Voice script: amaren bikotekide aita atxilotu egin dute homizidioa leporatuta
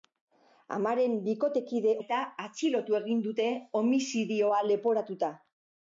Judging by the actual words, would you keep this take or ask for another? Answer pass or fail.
pass